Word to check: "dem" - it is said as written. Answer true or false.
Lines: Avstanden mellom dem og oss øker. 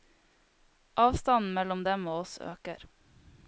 true